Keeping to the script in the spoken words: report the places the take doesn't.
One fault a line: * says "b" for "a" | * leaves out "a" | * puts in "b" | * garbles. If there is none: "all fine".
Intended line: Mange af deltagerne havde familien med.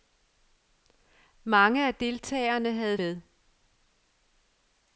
* leaves out "familien"